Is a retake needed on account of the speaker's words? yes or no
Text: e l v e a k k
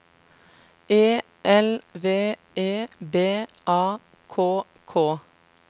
yes